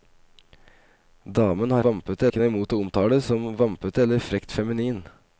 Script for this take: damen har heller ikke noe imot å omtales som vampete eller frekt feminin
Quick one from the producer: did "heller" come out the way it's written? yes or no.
no